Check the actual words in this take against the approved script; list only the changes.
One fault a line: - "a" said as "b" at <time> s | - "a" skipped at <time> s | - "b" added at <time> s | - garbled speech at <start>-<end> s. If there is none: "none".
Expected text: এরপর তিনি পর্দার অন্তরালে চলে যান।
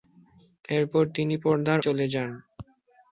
- "অন্তরালে" skipped at 1.8 s